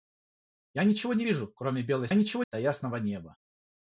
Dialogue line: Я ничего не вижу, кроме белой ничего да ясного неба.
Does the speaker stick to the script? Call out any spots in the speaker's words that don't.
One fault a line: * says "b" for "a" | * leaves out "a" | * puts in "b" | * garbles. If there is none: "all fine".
all fine